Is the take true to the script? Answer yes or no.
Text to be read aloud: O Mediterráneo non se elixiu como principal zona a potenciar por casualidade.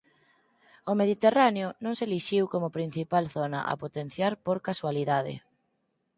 yes